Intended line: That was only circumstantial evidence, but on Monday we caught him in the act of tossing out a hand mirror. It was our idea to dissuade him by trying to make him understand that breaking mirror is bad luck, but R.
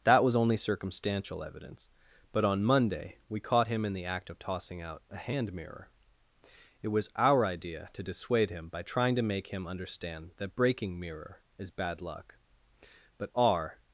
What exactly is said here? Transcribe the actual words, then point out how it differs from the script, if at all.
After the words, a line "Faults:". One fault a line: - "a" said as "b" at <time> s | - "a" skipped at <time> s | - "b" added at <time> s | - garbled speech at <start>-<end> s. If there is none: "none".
That was only circumstantial evidence, but on Monday we caught him in the act of tossing out a hand mirror. It was our idea to dissuade him by trying to make him understand that breaking mirror is bad luck, but R.
Faults:
none